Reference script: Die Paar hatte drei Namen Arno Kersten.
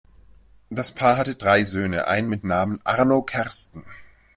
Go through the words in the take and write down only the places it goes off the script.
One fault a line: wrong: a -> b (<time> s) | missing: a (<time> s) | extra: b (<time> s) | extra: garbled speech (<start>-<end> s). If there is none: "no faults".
wrong: Die -> Das (0.7 s)
extra: Söhne einen mit (1.6 s)